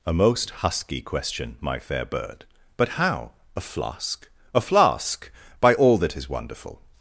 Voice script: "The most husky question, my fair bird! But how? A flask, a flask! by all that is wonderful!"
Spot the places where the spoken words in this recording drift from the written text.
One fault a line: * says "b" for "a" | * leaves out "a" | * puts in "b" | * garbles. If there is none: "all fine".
* says "A" for "The"